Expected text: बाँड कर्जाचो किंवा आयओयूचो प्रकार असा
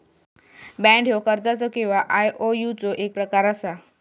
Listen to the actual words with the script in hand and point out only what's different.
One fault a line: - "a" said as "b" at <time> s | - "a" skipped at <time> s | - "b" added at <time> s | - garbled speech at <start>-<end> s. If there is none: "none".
- "ह्यो" added at 1.1 s
- "एक" added at 3.0 s